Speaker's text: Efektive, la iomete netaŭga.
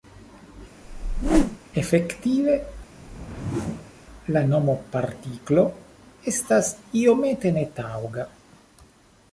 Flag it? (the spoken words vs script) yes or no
yes